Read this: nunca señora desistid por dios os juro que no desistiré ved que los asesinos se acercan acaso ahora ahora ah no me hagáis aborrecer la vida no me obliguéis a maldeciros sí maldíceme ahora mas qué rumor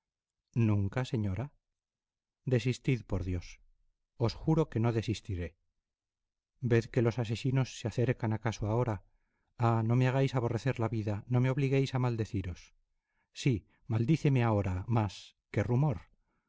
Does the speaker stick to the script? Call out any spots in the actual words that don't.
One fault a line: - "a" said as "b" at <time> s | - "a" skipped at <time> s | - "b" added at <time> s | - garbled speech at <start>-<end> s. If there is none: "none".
- "ahora" skipped at 8.9 s